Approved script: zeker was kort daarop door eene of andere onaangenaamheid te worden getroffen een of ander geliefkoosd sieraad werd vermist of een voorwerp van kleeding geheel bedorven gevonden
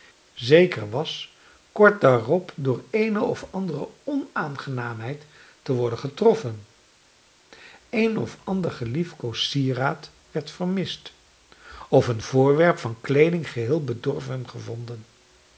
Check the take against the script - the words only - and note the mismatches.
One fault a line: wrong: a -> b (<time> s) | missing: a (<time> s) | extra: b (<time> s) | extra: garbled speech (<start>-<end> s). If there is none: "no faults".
no faults